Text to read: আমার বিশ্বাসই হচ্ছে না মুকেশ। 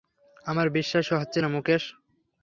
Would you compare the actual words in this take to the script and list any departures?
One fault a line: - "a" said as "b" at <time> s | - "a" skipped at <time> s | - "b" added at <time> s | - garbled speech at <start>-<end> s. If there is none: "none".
none